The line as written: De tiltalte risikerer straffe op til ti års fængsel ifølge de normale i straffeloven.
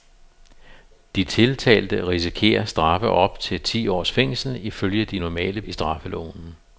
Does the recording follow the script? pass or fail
pass